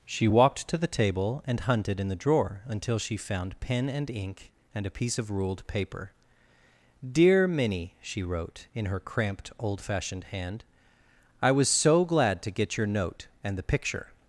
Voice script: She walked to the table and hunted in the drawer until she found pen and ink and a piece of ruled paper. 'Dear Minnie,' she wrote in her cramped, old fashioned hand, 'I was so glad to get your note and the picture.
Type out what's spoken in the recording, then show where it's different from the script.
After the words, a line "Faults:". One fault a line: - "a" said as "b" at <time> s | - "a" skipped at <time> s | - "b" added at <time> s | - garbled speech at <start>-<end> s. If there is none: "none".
She walked to the table and hunted in the drawer until she found pen and ink and a piece of ruled paper. 'Dear Minnie,' she wrote in her cramped, old fashioned hand, 'I was so glad to get your note and the picture.
Faults:
none